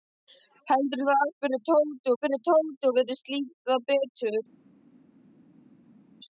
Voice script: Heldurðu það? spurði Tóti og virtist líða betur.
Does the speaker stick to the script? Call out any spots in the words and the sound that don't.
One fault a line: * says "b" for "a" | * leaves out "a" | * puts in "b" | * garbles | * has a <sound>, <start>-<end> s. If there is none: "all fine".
* puts in "spurði Tóti"